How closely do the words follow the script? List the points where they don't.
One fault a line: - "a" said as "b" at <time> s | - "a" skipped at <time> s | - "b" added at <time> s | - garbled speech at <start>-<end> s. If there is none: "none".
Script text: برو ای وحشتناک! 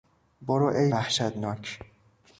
none